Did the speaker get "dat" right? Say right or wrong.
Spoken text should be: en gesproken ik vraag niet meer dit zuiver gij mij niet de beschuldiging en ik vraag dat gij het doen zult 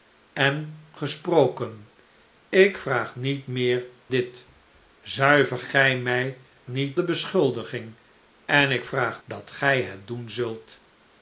right